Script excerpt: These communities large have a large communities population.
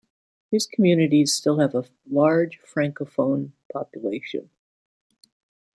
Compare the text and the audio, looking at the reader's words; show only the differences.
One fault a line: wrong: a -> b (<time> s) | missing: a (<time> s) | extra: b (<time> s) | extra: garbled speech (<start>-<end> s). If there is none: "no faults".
wrong: large -> still (1.3 s)
wrong: communities -> francophone (2.8 s)